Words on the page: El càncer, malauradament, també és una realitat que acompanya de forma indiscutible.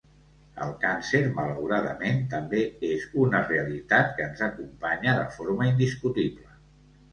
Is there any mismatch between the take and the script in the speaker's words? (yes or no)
yes